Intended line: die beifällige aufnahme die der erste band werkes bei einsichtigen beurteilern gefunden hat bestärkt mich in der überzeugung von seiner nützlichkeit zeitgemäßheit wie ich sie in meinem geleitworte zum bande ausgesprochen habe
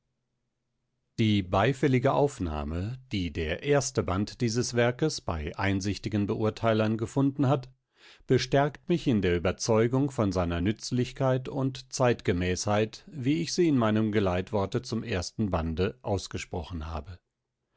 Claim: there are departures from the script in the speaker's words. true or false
true